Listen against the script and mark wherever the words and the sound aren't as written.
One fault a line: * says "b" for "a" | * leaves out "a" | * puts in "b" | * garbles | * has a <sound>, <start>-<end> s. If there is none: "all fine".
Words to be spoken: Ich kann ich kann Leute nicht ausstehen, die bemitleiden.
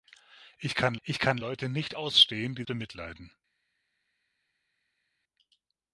all fine